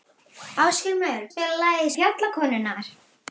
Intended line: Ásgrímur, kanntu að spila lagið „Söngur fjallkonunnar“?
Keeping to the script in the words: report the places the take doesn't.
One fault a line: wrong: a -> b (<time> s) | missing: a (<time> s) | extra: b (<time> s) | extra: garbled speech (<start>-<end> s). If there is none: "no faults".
missing: kanntu (1.2 s)
missing: Söngur (1.9 s)